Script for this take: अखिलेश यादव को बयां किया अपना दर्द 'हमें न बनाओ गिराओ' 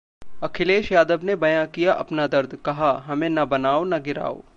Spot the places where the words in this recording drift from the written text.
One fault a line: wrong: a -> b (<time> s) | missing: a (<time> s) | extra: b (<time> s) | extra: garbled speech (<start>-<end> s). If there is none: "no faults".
wrong: को -> ने (1.2 s)
extra: कहा (2.6 s)
extra: न (3.8 s)